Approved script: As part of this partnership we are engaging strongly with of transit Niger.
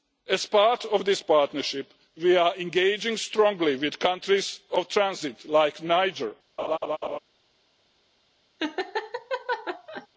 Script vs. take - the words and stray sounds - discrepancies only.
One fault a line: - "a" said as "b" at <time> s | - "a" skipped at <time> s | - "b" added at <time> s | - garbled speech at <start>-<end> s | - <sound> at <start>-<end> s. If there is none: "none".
- "countries" added at 4.0 s
- "like" added at 5.5 s
- laugh at 6.6-7.2 s
- laugh at 8.6-10.1 s